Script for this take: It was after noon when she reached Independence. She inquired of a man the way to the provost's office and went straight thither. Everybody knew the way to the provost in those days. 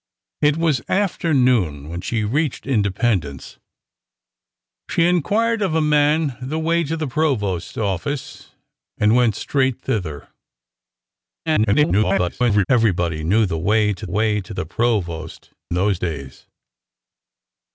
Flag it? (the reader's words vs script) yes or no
yes